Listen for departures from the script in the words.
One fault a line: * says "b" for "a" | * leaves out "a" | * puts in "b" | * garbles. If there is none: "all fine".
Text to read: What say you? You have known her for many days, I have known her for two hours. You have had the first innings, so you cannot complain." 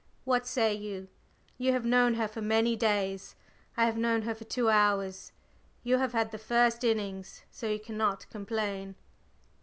all fine